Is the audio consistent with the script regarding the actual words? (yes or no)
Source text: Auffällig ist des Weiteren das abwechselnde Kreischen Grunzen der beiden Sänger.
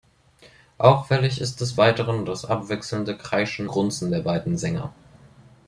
yes